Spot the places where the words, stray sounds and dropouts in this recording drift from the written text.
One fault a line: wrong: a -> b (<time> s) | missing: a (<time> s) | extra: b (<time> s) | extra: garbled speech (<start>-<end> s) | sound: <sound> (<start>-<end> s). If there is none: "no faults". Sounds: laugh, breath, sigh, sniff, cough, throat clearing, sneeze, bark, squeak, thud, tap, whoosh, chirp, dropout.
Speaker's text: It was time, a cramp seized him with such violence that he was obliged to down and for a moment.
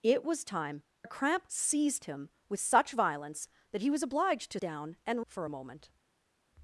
no faults